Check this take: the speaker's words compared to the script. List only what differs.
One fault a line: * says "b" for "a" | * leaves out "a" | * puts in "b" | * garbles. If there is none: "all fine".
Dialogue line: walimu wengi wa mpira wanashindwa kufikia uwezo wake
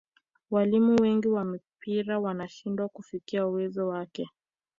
all fine